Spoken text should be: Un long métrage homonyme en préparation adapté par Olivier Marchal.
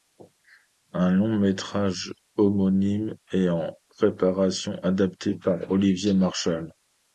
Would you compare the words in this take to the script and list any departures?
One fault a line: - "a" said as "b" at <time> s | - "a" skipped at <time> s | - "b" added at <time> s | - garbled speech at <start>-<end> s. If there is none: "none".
- "est" added at 3.3 s